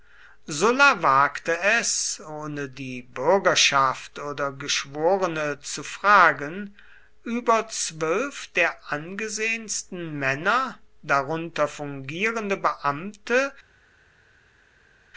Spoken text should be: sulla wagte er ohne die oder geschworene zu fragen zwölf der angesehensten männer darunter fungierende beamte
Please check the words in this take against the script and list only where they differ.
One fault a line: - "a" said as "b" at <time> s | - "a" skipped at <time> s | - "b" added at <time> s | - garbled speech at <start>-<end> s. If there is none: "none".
- "er" said as "es" at 1.6 s
- "bürgerschaft" added at 3.0 s
- "über" added at 7.2 s